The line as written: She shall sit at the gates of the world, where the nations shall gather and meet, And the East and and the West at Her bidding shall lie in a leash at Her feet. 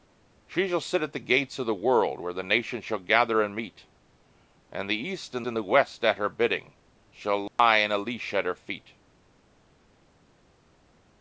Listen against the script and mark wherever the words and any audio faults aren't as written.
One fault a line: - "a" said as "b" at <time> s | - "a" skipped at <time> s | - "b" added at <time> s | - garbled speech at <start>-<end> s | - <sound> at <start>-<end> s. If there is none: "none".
- dropout at 7.5-7.6 s